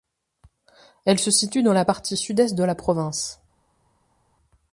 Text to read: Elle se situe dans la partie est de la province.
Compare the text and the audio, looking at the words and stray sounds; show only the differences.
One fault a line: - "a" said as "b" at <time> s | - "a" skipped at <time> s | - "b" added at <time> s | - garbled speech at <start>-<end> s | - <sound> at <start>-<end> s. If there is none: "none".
- "sud" added at 2.1 s